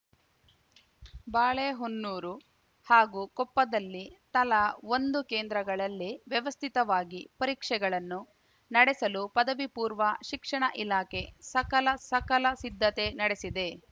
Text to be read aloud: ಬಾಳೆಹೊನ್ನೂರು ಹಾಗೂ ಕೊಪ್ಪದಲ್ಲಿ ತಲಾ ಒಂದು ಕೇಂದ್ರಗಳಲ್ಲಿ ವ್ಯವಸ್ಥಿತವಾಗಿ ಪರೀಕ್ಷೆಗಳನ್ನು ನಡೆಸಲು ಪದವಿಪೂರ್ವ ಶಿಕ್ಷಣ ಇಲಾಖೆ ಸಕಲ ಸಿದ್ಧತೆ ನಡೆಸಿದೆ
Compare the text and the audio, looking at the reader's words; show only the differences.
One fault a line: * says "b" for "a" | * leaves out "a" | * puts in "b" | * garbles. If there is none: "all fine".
* puts in "ಸಕಲ"